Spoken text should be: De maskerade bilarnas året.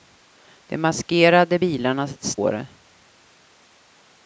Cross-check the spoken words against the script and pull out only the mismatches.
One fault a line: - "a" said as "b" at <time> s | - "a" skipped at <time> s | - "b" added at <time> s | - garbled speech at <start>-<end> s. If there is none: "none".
none